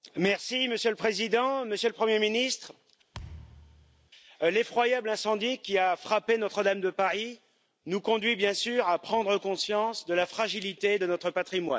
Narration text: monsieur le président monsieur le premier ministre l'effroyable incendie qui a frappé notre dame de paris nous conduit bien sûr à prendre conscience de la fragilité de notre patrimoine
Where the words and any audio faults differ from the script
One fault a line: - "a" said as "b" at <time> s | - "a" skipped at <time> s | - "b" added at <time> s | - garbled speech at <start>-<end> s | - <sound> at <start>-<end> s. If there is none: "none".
- thud at 3.1-4.1 s